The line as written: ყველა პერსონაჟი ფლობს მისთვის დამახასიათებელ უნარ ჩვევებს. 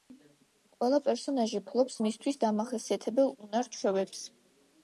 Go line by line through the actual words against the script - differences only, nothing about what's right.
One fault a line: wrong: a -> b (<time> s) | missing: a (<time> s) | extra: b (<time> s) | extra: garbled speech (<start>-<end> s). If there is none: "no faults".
no faults